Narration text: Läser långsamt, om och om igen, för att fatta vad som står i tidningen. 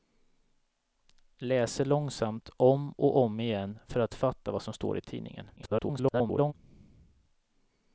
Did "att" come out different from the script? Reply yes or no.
no